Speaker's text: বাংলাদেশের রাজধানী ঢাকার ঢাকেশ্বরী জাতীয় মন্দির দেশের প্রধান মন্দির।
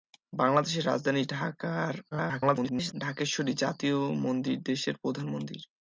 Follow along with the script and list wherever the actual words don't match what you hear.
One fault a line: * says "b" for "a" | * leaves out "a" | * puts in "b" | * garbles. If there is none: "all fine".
* garbles